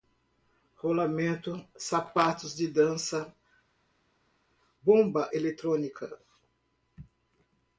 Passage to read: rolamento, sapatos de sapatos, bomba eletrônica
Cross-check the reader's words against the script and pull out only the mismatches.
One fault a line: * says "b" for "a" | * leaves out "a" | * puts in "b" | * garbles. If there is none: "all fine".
* says "dança" for "sapatos"